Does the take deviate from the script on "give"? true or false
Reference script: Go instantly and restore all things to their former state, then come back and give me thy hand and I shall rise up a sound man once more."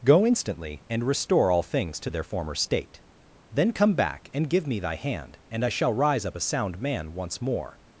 false